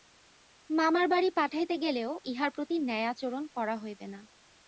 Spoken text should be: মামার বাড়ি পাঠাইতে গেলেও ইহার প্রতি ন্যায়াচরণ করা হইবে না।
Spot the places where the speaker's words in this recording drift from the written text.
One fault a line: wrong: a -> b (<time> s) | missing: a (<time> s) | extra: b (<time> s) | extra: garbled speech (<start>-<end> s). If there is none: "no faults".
no faults